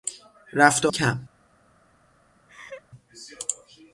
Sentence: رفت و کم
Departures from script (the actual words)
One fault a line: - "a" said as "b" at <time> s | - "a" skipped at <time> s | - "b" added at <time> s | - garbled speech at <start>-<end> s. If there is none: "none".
none